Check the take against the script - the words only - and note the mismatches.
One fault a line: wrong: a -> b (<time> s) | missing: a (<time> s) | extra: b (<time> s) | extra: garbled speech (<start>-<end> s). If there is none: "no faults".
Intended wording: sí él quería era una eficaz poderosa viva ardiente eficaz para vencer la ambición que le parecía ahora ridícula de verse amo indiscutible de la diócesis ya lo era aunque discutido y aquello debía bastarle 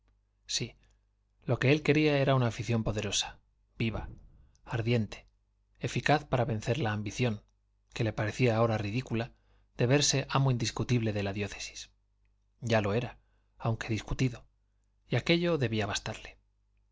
extra: lo que (1.4 s)
wrong: eficaz -> afición (2.5 s)